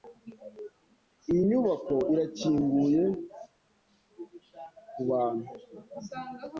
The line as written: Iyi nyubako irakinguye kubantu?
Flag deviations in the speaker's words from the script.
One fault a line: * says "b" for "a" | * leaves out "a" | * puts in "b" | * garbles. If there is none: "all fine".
all fine